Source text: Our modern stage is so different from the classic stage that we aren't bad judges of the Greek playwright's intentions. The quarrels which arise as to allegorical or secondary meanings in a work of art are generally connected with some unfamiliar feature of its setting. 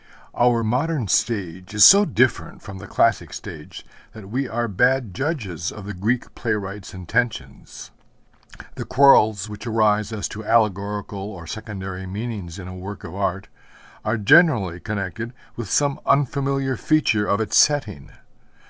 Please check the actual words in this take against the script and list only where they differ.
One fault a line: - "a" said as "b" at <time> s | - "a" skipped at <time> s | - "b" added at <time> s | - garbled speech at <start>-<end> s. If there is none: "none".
- "aren't" said as "are" at 4.5 s